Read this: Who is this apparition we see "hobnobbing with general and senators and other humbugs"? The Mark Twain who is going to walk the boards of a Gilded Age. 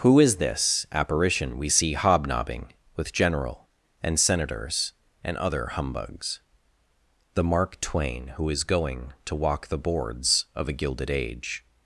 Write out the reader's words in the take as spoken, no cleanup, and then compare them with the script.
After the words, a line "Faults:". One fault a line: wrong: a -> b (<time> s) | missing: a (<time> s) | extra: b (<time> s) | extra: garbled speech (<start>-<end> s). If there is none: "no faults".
Who is this apparition we see "hobnobbing with general and senators and other humbugs"? The Mark Twain who is going to walk the boards of a Gilded Age.
Faults:
no faults